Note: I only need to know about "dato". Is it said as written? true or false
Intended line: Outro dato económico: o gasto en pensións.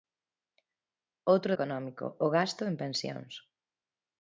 false